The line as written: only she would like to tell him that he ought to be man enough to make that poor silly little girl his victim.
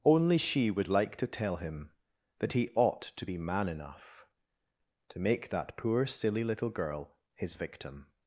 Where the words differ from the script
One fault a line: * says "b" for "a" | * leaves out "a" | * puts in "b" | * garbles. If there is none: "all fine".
all fine